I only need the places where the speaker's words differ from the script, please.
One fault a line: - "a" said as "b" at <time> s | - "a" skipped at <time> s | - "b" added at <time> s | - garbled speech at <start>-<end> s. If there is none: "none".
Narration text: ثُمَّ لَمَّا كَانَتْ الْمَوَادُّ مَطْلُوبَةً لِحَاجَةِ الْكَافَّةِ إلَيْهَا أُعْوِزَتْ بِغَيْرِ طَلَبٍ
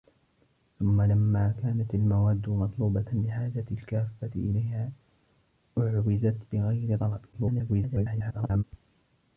- garbled speech at 7.3-8.6 s